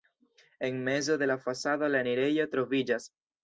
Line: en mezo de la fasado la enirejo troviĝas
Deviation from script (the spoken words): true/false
false